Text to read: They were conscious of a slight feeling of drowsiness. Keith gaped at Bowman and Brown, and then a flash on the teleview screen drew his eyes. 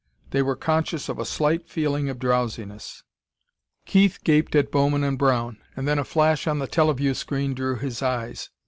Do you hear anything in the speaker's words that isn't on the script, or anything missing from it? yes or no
no